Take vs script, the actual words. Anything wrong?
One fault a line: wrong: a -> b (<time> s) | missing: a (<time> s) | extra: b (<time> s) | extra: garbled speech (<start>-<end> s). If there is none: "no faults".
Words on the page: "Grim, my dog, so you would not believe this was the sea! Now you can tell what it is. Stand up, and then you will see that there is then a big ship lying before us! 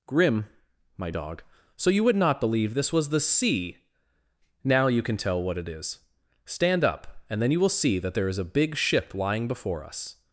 missing: then (8.4 s)